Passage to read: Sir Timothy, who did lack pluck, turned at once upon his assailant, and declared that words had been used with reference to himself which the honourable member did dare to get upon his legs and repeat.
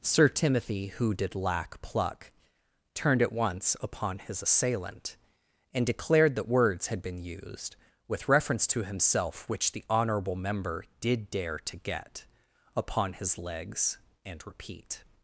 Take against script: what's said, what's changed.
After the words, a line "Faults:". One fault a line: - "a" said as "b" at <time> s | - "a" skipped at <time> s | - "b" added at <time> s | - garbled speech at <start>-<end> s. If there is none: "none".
Sir Timothy, who did lack pluck, turned at once upon his assailant, and declared that words had been used with reference to himself which the honourable member did dare to get upon his legs and repeat.
Faults:
none